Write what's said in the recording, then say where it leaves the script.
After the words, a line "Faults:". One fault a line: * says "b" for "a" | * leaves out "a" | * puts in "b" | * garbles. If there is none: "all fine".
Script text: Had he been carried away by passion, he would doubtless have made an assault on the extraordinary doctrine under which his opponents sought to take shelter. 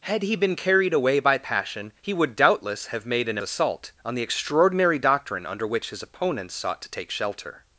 Had he been carried away by passion, he would doubtless have made an assault on the extraordinary doctrine under which his opponents sought to take shelter.
Faults:
all fine